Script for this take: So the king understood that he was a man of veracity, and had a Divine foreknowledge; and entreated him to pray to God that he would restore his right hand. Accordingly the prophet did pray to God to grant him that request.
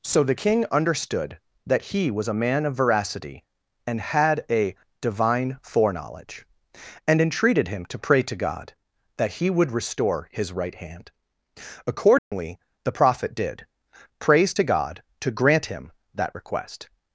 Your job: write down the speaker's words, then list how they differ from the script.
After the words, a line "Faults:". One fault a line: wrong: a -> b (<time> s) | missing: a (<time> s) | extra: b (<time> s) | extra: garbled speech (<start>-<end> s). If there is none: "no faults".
So the king understood that he was a man of veracity, and had a Divine foreknowledge; and entreated him to pray to God that he would restore his right hand. Accordingly the prophet did prays to God to grant him that request.
Faults:
wrong: pray -> prays (14.2 s)